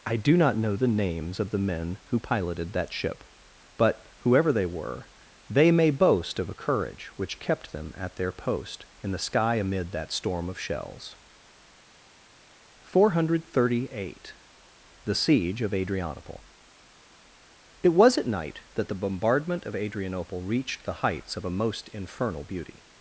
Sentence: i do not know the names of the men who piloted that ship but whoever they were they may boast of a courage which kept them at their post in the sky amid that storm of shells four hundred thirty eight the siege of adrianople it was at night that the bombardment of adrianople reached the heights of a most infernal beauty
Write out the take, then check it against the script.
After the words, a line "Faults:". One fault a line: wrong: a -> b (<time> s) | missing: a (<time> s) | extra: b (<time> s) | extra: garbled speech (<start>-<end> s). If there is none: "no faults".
i do not know the names of the men who piloted that ship but whoever they were they may boast of a courage which kept them at their post in the sky amid that storm of shells four hundred thirty eight the siege of adrianople it was at night that the bombardment of adrianople reached the heights of a most infernal beauty
Faults:
no faults